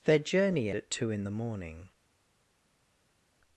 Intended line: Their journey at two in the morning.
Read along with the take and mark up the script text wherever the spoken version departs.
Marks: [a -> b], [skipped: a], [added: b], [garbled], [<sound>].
Their journey at two in the morning.